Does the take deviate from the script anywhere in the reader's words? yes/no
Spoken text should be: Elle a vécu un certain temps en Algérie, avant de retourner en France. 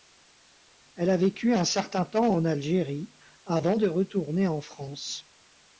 no